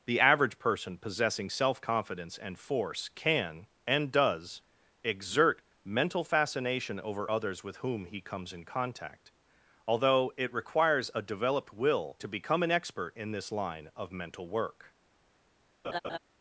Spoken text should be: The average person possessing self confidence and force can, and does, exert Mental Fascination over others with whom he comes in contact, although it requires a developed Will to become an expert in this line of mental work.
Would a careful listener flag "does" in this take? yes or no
no